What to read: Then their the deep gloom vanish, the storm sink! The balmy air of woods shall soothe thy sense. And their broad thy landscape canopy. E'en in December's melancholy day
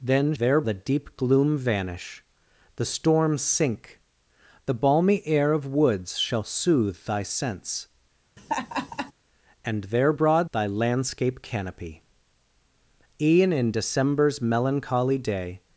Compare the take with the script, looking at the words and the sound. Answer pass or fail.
fail